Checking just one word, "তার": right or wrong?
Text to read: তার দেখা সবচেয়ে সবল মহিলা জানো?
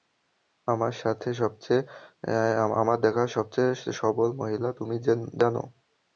wrong